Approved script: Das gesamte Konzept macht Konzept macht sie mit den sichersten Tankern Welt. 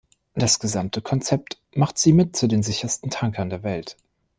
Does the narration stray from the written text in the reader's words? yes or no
yes